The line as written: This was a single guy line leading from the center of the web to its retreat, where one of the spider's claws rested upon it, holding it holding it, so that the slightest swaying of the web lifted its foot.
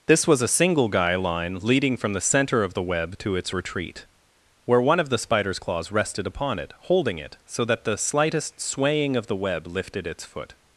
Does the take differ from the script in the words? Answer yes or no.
yes